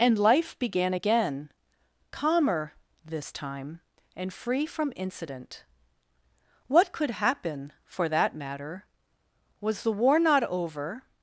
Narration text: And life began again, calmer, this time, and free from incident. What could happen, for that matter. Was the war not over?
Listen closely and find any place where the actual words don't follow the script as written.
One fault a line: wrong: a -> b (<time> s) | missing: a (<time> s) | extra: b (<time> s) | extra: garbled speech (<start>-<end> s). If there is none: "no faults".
no faults